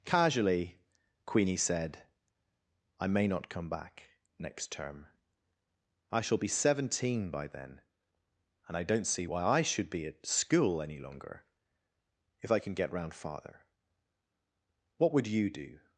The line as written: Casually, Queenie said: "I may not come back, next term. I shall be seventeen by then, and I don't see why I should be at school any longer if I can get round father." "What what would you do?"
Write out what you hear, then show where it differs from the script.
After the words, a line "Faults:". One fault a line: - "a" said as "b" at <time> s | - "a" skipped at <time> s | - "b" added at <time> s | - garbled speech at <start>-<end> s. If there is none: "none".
Casually, Queenie said: "I may not come back, next term. I shall be seventeen by then, and I don't see why I should be at school any longer if I can get round father." "What would you do?"
Faults:
- "what" skipped at 15.1 s